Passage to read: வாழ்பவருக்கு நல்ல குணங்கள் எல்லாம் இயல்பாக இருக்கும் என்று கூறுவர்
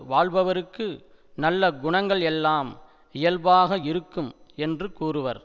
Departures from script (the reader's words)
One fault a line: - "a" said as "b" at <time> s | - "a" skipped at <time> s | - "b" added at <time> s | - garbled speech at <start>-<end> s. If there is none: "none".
none